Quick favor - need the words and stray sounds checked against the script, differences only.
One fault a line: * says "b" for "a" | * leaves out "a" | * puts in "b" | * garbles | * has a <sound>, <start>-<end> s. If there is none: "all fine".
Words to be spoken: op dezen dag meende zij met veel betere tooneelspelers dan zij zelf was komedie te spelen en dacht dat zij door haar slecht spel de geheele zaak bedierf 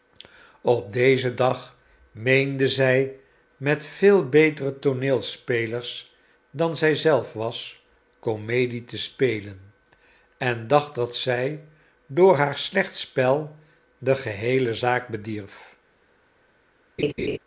* has a laugh, 17.0-17.4 s